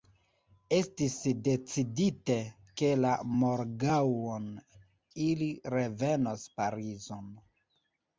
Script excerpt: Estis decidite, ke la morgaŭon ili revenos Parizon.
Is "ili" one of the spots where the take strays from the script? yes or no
no